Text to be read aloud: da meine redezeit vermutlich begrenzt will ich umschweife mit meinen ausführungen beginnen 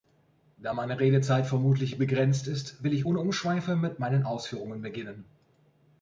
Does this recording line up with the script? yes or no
no